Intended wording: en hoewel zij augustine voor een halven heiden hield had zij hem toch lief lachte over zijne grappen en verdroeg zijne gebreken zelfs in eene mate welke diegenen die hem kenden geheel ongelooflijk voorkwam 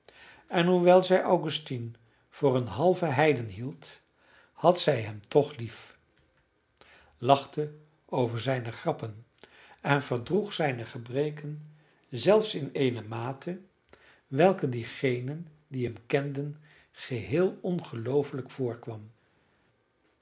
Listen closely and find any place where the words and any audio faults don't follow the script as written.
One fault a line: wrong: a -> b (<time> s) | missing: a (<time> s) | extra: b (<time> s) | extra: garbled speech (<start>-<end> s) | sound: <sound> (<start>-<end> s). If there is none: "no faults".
no faults